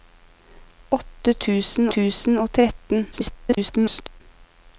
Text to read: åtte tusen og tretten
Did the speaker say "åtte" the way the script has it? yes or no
yes